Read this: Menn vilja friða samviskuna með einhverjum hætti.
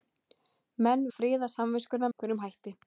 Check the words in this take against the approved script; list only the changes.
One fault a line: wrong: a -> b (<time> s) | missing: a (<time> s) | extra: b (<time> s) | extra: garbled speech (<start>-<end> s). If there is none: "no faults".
missing: vilja (1.0 s)
missing: með (2.1 s)